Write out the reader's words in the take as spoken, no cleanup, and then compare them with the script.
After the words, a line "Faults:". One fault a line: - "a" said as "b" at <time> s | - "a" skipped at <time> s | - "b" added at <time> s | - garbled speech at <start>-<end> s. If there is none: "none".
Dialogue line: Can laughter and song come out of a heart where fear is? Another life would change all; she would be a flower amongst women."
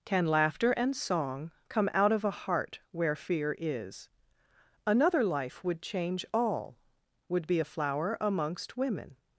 Can laughter and song come out of a heart where fear is? Another life would change all; would be a flower amongst women."
Faults:
- "she" skipped at 6.8 s